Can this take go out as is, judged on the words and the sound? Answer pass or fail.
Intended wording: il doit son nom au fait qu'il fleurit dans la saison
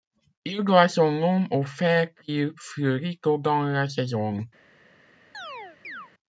fail